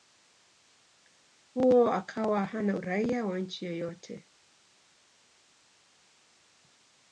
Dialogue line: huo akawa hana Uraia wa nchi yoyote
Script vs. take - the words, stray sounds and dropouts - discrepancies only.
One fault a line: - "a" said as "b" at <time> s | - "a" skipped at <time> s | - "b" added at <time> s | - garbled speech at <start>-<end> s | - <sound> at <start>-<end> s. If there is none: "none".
none